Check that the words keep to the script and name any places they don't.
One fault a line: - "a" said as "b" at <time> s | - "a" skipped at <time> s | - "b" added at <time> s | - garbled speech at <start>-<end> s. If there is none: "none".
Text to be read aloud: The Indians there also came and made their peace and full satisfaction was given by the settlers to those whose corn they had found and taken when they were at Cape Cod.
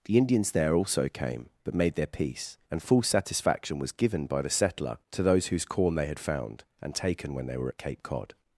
- "and" said as "but" at 1.6 s
- "settlers" said as "settler" at 4.5 s